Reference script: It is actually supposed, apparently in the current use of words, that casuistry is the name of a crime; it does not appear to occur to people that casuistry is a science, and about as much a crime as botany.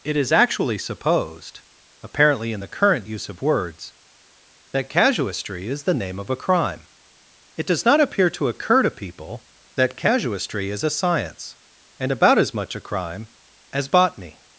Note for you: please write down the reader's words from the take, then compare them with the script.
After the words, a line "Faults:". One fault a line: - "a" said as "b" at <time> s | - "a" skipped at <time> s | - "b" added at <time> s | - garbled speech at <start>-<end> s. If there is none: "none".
It is actually supposed, apparently in the current use of words, that casuistry is the name of a crime; it does not appear to occur to people that casuistry is a science, and about as much a crime as botany.
Faults:
none